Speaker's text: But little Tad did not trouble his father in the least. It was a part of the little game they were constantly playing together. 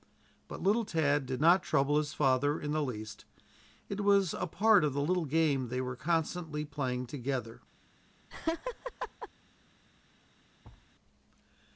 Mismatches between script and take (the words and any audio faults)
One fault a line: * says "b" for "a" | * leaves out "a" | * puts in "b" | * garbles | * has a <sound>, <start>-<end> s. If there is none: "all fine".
* has a laugh, 8.3-9.3 s
* has a thud, 10.6-10.9 s